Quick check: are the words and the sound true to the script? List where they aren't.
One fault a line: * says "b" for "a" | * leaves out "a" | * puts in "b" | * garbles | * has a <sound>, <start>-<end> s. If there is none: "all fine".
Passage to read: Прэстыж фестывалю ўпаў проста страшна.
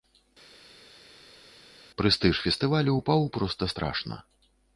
all fine